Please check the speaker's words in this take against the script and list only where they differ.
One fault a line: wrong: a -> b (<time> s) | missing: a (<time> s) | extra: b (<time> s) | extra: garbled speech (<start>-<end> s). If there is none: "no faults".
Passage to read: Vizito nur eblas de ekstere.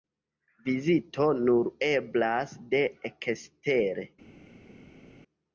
no faults